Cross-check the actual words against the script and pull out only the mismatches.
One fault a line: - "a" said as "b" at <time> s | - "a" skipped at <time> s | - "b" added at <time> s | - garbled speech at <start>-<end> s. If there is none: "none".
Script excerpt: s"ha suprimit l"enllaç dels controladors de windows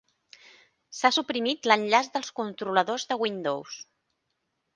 none